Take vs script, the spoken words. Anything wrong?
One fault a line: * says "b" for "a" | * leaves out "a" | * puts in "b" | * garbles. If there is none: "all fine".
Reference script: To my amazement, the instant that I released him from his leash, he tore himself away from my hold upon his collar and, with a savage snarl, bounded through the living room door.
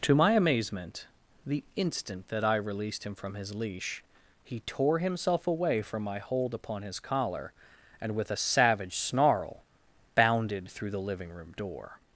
all fine